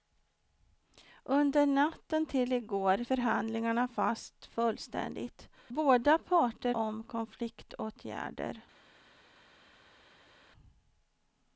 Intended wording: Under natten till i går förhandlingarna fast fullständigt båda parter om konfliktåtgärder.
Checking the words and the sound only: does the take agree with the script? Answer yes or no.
yes